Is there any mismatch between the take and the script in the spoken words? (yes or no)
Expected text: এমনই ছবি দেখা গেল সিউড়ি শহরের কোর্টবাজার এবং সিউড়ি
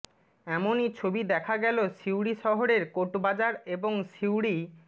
no